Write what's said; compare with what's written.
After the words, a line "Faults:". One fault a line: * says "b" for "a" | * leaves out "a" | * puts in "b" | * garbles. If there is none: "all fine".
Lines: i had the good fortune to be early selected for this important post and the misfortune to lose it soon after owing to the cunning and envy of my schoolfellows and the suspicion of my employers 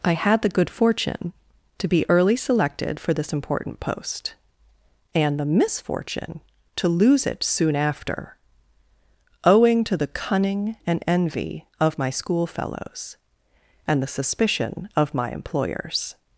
i had the good fortune to be early selected for this important post and the misfortune to lose it soon after owing to the cunning and envy of my schoolfellows and the suspicion of my employers
Faults:
all fine